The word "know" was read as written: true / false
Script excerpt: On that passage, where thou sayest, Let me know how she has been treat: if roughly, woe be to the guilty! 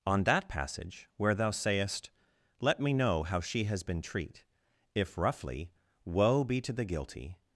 true